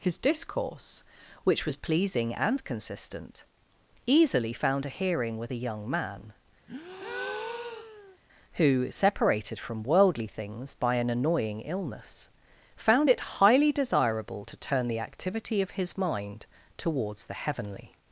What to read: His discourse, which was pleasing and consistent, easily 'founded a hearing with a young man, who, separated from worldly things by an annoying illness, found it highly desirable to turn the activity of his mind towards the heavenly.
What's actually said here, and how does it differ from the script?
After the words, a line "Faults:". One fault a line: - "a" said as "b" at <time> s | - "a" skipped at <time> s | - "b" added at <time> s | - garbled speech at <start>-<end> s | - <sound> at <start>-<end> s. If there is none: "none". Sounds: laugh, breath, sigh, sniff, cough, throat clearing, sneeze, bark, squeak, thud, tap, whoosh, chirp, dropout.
His discourse, which was pleasing and consistent, easily 'found a hearing with a young man, who, separated from worldly things by an annoying illness, found it highly desirable to turn the activity of his mind towards the heavenly.
Faults:
- "founded" said as "found" at 4.5 s
- breath at 6.7-8.2 s